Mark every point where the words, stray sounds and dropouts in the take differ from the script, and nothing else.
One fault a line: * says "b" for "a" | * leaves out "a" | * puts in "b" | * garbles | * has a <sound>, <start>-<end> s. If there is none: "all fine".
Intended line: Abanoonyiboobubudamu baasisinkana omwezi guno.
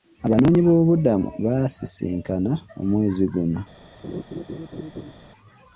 * has a laugh, 4.0-5.1 s